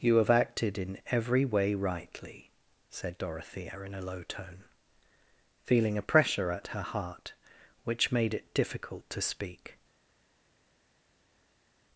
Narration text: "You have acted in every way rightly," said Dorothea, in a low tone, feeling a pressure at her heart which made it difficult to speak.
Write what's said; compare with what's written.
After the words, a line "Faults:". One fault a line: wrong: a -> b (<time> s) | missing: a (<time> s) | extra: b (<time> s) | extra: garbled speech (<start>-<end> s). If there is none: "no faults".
"You have acted in every way rightly," said Dorothea, in a low tone, feeling a pressure at her heart which made it difficult to speak.
Faults:
no faults